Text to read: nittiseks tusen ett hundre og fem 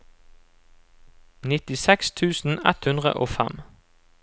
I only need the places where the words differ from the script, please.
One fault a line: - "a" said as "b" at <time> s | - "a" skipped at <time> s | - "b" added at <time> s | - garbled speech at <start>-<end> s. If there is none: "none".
none